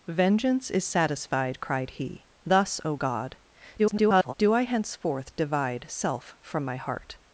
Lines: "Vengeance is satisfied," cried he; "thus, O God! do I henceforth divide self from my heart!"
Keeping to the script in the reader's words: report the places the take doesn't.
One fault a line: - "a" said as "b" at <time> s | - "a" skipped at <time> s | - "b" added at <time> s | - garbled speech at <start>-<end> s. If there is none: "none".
- garbled speech at 3.8-4.3 s